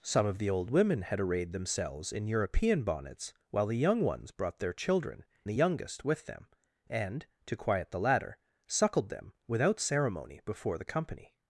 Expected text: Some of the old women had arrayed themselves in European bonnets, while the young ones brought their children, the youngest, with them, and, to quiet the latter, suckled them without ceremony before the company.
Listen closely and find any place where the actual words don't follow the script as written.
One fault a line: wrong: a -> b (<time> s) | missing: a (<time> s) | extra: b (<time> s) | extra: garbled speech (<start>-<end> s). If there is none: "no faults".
no faults